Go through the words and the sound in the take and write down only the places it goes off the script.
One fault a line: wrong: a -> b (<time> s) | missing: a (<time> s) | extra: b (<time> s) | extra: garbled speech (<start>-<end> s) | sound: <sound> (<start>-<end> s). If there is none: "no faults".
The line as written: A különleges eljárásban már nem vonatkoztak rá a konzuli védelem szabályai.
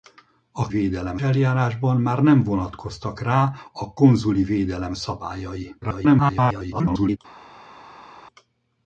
wrong: különleges -> védelem (0.7 s)
extra: garbled speech (5.8-7.2 s)